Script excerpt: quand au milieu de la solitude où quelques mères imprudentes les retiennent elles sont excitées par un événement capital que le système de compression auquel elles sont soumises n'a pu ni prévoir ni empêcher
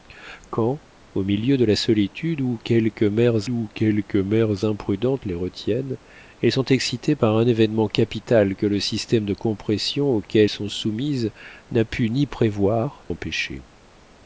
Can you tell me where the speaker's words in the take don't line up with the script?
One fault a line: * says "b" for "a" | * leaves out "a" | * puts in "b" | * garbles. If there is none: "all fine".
* puts in "où quelques mères"
* leaves out "elles"
* leaves out "ni"